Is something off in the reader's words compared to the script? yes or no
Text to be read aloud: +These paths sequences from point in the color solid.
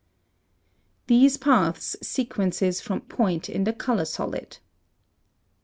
no